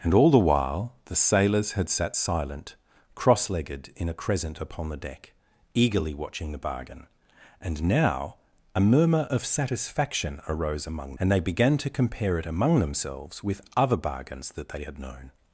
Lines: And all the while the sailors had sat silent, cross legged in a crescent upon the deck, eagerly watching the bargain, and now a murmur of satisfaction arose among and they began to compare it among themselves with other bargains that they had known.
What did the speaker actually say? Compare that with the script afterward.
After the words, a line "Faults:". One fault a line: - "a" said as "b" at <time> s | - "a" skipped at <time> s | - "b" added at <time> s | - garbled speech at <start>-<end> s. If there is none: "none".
And all the while the sailors had sat silent, cross legged in a crescent upon the deck, eagerly watching the bargain, and now a murmur of satisfaction arose among and they began to compare it among themselves with other bargains that they had known.
Faults:
none